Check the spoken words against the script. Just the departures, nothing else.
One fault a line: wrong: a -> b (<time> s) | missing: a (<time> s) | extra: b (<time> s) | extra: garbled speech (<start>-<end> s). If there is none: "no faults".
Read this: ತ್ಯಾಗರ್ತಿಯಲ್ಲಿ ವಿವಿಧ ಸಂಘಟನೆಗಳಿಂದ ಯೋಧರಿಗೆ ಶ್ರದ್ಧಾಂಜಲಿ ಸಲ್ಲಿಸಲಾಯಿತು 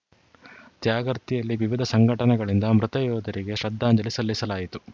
extra: ಮೃತ (2.8 s)